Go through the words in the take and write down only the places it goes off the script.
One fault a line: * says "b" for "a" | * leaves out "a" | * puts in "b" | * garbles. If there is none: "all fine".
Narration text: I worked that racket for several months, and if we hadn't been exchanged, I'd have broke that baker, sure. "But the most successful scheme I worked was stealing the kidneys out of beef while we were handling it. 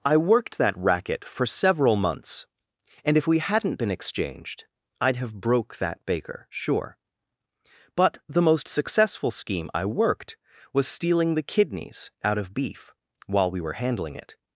all fine